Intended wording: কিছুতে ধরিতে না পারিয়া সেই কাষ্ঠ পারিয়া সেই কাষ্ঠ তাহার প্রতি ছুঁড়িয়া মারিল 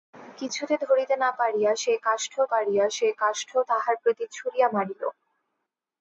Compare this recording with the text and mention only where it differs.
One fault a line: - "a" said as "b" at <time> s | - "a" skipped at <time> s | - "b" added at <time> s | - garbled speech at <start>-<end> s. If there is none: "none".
none